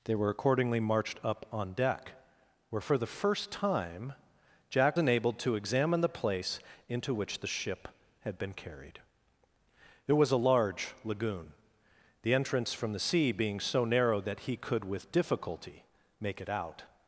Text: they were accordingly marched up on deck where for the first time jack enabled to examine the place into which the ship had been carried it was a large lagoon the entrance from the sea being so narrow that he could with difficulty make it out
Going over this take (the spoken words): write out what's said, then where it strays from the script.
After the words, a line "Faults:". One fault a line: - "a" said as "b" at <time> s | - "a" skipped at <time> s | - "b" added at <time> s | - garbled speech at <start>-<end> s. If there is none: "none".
they were accordingly marched up on deck where for the first time jack enabled to examine the place into which the ship had been carried it was a large lagoon the entrance from the sea being so narrow that he could with difficulty make it out
Faults:
none